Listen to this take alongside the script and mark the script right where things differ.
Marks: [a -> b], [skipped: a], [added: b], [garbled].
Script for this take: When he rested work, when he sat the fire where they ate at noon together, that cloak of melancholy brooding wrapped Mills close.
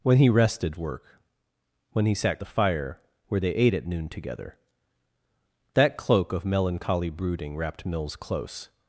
When he rested work, when he sat the fire where they ate at noon together, that cloak of melancholy brooding wrapped Mills close.